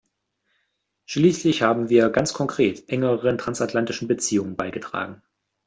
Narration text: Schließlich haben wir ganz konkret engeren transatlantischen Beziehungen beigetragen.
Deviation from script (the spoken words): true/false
false